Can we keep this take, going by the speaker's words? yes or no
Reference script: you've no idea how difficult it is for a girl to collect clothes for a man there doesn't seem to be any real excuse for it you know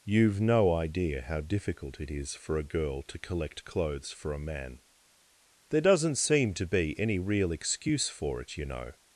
yes